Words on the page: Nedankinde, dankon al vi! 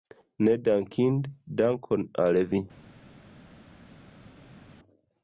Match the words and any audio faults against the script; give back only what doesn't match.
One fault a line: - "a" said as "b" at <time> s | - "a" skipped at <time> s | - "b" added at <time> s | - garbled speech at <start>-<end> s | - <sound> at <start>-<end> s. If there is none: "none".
none